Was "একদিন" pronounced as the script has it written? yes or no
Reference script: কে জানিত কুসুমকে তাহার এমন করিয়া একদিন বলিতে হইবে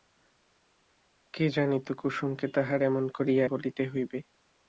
no